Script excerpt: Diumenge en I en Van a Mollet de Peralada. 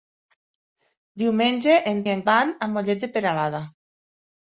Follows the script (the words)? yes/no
yes